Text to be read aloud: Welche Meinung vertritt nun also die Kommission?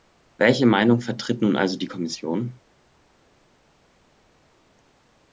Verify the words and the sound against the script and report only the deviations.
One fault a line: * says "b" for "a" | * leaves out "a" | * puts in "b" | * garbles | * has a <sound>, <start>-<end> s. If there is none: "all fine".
all fine